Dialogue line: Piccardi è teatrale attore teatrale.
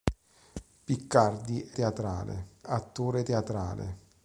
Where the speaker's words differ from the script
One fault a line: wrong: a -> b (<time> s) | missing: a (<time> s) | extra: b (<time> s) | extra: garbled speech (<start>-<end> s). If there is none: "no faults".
no faults